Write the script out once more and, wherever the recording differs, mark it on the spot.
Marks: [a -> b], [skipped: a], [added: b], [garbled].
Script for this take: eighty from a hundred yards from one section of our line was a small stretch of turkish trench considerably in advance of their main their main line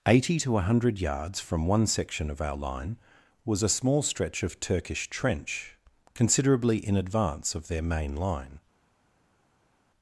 eighty [from -> to] a hundred yards from one section of our line was a small stretch of turkish trench considerably in advance of their main [skipped: their main] line